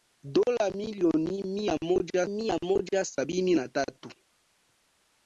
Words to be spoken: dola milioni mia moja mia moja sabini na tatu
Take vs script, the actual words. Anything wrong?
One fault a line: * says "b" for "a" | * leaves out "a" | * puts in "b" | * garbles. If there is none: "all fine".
all fine